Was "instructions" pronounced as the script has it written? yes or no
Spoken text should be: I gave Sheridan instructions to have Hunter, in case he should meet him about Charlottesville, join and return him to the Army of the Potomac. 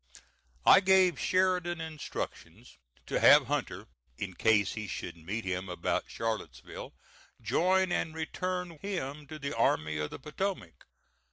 yes